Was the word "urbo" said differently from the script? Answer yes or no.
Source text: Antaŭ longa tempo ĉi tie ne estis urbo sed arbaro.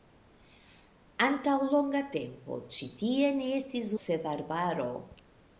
yes